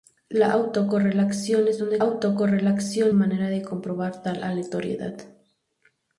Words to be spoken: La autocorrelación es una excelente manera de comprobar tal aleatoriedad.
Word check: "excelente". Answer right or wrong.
wrong